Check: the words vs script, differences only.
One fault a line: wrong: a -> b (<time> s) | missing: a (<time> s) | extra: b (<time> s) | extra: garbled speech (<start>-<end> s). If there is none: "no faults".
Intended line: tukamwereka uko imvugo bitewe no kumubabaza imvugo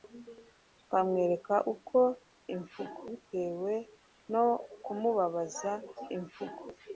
no faults